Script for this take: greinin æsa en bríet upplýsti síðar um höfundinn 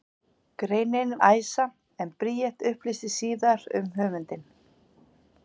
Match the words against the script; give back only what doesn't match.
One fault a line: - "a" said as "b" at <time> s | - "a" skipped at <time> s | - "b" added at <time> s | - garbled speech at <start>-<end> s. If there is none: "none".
none